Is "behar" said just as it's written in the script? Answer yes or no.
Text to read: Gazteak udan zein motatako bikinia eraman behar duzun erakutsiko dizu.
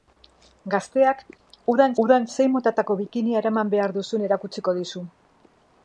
yes